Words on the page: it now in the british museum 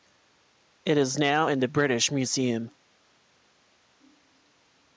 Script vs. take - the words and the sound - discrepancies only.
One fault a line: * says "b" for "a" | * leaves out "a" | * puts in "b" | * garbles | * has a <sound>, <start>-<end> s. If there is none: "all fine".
* puts in "is"